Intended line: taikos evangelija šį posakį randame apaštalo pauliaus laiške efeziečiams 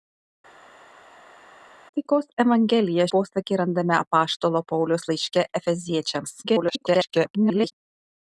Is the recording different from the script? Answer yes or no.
yes